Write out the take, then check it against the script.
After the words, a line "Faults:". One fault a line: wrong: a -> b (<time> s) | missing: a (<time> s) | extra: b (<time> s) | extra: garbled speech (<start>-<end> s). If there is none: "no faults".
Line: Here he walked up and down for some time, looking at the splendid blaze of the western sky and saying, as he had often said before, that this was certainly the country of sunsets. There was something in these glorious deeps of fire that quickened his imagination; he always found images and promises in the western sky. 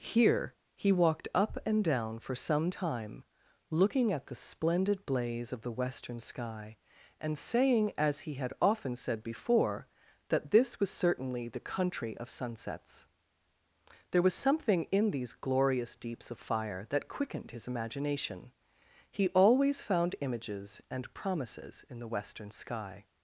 Here he walked up and down for some time, looking at the splendid blaze of the western sky and saying, as he had often said before, that this was certainly the country of sunsets. There was something in these glorious deeps of fire that quickened his imagination; he always found images and promises in the western sky.
Faults:
no faults